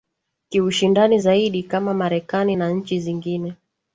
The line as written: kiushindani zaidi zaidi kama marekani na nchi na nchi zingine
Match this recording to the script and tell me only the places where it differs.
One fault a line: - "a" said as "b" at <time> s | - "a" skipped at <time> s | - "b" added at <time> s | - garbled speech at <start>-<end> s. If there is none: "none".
- "zaidi" skipped at 1.6 s
- "na nchi" skipped at 3.0 s